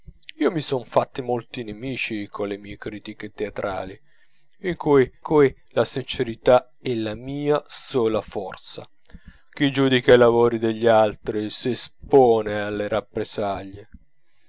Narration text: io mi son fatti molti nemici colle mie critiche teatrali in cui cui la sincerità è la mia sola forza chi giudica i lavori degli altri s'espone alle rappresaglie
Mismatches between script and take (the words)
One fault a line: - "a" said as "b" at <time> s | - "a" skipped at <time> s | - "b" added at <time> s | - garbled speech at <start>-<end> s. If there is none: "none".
none